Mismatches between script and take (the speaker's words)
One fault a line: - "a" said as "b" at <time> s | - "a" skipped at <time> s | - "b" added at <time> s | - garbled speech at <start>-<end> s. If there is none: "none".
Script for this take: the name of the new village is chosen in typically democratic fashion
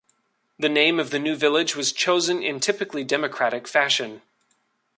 - "is" said as "was" at 1.8 s